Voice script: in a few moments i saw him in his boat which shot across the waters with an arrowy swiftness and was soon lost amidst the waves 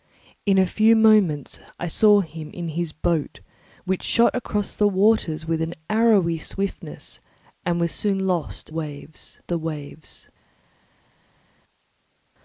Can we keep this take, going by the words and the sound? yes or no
no